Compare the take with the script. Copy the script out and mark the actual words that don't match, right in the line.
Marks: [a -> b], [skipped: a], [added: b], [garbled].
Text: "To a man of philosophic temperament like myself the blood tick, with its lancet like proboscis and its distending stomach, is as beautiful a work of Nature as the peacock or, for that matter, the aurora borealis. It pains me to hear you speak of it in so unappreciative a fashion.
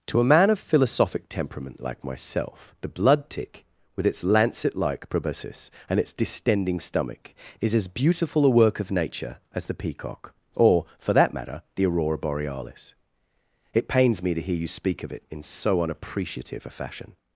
"To a man of philosophic temperament like myself the blood tick, with its lancet like proboscis and its distending stomach, is as beautiful a work of Nature as the peacock or, for that matter, the aurora borealis. It pains me to hear you speak of it in so unappreciative a fashion.